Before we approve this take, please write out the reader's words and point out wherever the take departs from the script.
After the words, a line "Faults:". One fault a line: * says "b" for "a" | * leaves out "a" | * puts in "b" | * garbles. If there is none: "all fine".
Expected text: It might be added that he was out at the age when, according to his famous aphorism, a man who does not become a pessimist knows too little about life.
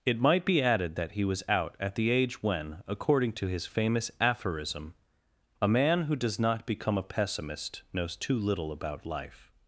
It might be added that he was out at the age when, according to his famous aphorism, a man who does not become a pessimist knows too little about life.
Faults:
all fine